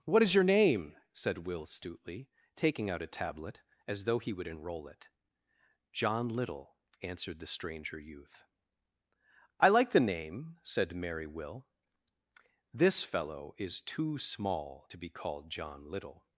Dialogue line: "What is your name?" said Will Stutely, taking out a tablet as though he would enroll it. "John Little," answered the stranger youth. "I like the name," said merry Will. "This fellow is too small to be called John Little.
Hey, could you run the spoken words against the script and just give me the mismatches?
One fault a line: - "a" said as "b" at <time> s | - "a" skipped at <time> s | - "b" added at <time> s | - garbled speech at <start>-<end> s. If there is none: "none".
none